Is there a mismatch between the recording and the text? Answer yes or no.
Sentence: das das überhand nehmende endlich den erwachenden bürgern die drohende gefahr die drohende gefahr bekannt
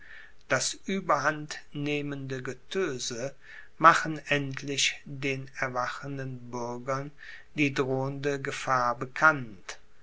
yes